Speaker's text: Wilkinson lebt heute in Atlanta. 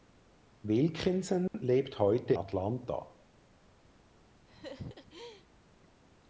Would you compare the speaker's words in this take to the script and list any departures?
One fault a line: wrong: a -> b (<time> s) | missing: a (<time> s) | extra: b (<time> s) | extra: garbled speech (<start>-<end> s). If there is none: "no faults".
missing: in (2.3 s)